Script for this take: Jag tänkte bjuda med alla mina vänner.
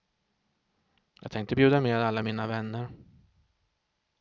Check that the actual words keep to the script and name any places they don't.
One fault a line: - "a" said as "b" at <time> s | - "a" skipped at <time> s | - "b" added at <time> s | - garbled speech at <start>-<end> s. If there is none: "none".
none